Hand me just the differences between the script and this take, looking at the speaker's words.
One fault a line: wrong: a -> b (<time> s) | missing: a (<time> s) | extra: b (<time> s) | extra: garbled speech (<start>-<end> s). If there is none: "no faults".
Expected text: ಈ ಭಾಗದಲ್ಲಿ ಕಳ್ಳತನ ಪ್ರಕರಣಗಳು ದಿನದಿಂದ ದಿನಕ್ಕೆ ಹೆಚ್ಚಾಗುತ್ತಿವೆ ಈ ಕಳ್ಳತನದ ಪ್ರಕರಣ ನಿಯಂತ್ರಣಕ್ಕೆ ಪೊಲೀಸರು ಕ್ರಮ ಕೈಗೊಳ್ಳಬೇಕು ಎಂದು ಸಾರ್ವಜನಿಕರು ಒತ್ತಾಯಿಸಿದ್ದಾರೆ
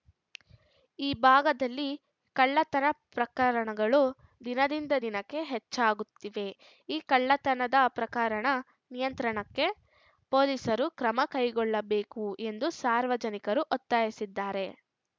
no faults